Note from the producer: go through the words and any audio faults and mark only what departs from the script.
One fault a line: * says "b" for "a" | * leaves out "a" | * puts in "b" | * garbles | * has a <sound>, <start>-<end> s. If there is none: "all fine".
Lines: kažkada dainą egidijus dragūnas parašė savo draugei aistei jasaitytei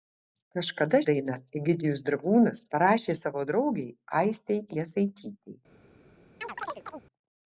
* has a chirp, 6.4-7.0 s